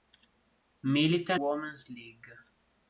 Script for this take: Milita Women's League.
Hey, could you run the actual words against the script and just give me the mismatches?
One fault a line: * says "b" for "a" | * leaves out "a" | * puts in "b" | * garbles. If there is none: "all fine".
all fine